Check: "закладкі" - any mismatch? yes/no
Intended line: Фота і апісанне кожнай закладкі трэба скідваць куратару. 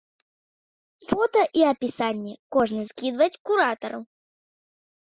yes